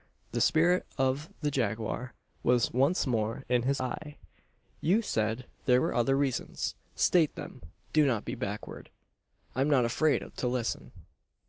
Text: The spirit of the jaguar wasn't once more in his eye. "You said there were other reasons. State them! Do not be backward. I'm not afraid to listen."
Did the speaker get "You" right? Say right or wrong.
right